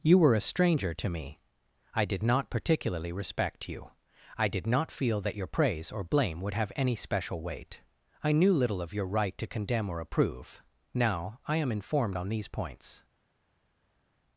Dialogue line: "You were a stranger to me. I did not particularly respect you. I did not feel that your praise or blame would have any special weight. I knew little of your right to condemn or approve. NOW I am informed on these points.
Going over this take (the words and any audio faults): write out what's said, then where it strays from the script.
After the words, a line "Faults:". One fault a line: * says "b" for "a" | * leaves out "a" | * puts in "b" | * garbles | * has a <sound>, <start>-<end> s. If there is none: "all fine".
"You were a stranger to me. I did not particularly respect you. I did not feel that your praise or blame would have any special weight. I knew little of your right to condemn or approve. NOW I am informed on these points.
Faults:
all fine